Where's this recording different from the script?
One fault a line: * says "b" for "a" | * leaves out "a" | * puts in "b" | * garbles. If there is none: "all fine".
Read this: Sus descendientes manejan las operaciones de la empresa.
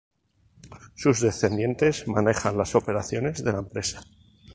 all fine